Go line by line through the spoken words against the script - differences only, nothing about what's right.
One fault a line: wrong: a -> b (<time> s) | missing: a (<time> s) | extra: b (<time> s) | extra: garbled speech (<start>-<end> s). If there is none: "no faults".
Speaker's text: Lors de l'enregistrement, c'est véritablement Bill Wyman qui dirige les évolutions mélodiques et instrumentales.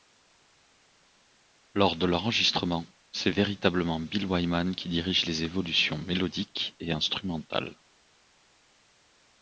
no faults